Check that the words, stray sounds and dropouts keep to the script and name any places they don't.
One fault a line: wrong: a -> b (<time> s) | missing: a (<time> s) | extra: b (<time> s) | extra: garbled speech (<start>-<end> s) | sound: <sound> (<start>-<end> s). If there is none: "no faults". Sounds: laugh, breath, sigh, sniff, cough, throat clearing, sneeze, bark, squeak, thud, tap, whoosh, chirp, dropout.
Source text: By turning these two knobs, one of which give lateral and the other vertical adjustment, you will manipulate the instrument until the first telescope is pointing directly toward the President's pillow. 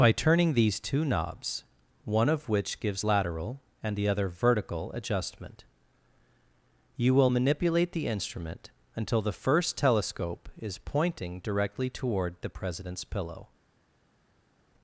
wrong: give -> gives (2.8 s)